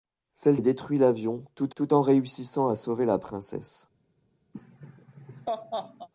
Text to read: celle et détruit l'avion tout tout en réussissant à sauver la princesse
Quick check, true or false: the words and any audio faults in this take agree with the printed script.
false